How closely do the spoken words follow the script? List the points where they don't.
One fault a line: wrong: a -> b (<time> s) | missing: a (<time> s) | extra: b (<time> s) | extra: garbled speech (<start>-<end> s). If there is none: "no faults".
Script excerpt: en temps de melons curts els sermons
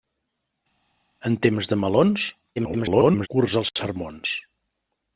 extra: garbled speech (2.6-3.3 s)